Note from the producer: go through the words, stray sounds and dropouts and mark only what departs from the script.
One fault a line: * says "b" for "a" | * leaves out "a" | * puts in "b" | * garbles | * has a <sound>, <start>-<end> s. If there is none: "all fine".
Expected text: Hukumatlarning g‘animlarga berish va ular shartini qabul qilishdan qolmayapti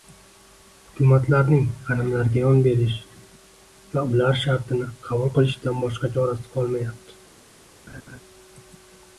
* puts in "yon"
* puts in "boshqa chorasi"
* has a laugh, 7.9-8.2 s